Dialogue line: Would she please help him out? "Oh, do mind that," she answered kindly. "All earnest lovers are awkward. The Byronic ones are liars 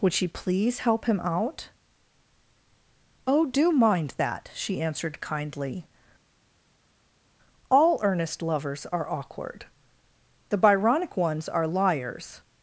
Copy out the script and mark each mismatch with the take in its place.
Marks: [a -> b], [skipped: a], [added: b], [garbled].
Would she please help him out? "Oh, do mind that," she answered kindly. "All earnest lovers are awkward. The Byronic ones are liars